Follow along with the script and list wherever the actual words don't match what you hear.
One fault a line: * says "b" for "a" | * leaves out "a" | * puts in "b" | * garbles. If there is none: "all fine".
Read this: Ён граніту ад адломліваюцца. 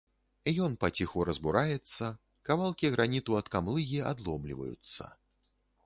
* puts in "паціху разбураецца кавалкі"
* puts in "камлыгі"